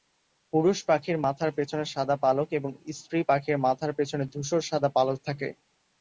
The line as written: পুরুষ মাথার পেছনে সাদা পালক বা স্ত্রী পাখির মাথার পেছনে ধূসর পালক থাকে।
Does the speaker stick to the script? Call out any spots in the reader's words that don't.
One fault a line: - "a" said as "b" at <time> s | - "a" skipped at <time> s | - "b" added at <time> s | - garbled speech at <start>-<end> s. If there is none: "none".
- "পাখির" added at 0.8 s
- "বা" said as "এবং" at 2.5 s
- "সাদা" added at 4.6 s